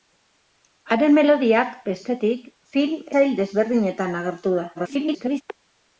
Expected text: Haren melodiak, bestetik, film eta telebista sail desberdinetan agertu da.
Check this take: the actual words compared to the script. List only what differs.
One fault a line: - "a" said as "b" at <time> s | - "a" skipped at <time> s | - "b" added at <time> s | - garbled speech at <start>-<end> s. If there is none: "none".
- "eta telebista" skipped at 3.0 s
- garbled speech at 4.7-5.4 s